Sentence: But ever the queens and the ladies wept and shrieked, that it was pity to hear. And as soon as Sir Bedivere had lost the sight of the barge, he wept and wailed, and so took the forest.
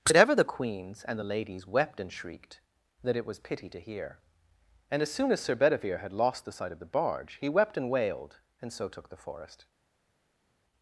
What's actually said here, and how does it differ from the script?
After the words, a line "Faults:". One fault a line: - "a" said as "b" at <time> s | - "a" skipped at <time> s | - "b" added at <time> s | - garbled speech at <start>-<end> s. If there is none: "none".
But ever the queens and the ladies wept and shrieked, that it was pity to hear. And as soon as Sir Bedivere had lost the sight of the barge, he wept and wailed, and so took the forest.
Faults:
none